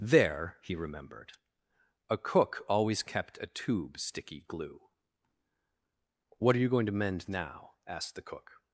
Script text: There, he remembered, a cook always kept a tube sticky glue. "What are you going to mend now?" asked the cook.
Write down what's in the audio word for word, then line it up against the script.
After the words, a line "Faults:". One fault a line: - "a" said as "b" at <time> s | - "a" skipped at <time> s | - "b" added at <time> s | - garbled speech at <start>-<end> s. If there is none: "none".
There, he remembered, a cook always kept a tube sticky glue. "What are you going to mend now?" asked the cook.
Faults:
none